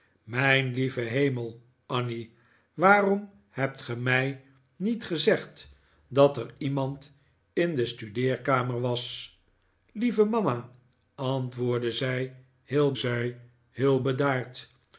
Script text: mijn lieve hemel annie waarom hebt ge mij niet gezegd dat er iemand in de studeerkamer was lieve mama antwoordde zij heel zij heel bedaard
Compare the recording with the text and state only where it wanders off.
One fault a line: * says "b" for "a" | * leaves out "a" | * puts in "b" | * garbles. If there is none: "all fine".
all fine